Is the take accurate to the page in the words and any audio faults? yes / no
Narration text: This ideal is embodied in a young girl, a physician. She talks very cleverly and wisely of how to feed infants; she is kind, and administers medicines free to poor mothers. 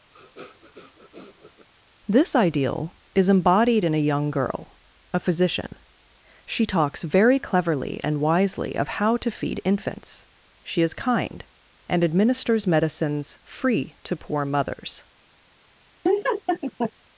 no